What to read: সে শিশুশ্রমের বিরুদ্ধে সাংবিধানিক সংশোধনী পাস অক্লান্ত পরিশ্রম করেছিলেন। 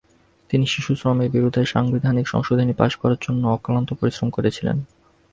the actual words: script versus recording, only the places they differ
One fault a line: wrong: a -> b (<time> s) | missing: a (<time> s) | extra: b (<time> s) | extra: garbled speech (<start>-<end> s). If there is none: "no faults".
wrong: সে -> তিনি (0.5 s)
extra: করার জন্য (3.0 s)